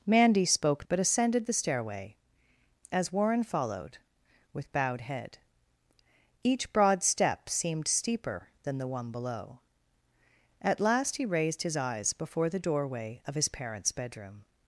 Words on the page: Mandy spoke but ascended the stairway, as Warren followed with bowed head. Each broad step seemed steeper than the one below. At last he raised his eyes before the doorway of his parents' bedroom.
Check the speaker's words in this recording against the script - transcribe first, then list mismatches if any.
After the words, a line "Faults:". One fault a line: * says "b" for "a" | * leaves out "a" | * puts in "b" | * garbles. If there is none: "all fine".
Mandy spoke but ascended the stairway, as Warren followed with bowed head. Each broad step seemed steeper than the one below. At last he raised his eyes before the doorway of his parents' bedroom.
Faults:
all fine